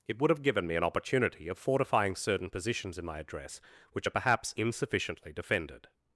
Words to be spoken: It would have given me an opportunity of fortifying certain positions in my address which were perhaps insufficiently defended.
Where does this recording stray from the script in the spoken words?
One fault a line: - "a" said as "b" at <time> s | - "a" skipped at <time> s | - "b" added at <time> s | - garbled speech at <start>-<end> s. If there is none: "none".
- "were" said as "are" at 4.0 s